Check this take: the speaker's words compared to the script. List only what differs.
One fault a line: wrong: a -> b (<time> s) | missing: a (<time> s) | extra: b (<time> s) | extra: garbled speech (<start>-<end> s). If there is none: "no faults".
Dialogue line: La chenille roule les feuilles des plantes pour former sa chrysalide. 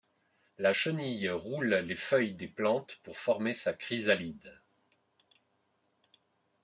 no faults